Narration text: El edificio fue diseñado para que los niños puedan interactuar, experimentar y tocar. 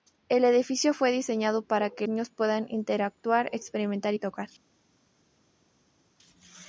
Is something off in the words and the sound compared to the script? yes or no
yes